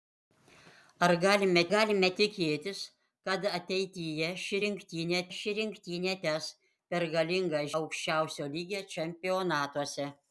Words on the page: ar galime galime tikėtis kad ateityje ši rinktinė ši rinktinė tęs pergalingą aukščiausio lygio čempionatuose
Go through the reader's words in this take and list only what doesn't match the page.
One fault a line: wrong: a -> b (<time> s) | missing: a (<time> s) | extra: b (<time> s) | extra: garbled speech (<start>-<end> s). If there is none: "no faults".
no faults